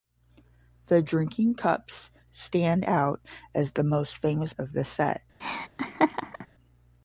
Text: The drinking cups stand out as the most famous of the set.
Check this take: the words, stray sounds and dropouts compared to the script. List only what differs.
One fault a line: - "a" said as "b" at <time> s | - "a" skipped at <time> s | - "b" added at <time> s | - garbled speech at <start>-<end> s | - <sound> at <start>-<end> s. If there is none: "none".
- laugh at 5.4-6.5 s